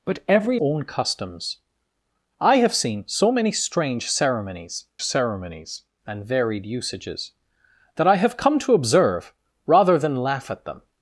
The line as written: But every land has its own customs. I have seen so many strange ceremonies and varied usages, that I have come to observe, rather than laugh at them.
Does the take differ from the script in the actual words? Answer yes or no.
yes